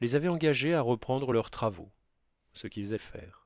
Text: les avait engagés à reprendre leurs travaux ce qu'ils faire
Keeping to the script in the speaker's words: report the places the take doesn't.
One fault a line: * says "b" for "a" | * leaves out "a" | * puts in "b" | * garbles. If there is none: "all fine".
all fine